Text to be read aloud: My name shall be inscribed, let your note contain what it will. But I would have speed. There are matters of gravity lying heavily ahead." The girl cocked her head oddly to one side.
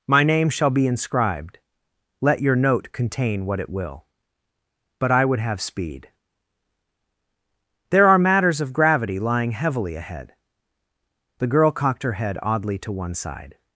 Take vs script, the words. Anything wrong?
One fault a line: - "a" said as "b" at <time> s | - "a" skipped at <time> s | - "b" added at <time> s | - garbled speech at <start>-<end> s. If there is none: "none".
none